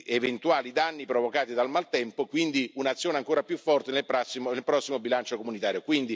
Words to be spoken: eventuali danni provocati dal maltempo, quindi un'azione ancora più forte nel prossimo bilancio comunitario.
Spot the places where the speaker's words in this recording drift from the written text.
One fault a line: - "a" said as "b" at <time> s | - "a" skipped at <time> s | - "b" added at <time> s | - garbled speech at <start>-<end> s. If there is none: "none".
none